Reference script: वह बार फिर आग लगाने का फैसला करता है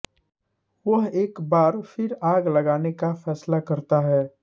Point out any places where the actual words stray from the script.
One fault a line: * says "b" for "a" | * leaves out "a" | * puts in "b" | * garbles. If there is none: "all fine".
* puts in "एक"